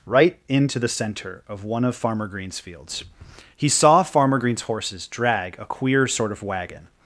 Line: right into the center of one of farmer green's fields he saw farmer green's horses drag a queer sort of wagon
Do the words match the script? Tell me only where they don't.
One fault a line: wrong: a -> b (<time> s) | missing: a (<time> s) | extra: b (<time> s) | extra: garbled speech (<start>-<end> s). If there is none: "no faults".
no faults